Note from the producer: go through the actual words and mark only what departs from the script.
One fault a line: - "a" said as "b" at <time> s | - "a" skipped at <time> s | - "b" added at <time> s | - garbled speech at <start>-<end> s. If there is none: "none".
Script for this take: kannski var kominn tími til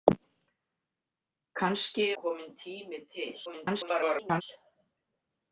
- "var" skipped at 2.1 s
- garbled speech at 3.5-4.4 s